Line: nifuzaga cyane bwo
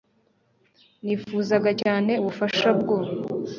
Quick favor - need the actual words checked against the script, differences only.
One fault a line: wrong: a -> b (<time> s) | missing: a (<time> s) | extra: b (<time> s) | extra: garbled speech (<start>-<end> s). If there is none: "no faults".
extra: ubufasha (2.2 s)